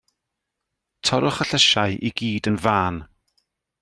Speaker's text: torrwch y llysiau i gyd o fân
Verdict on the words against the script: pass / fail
fail